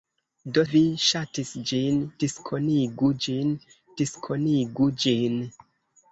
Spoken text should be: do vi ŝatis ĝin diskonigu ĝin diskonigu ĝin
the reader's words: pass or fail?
pass